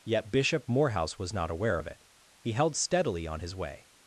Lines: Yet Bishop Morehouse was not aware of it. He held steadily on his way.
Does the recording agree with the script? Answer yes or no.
yes